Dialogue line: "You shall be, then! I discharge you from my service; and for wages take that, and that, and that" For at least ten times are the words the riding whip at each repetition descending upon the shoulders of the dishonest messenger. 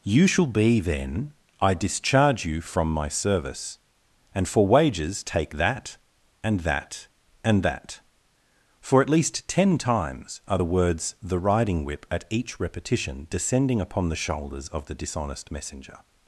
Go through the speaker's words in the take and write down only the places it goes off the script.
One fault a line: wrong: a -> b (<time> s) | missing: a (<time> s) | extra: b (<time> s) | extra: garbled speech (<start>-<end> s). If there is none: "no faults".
no faults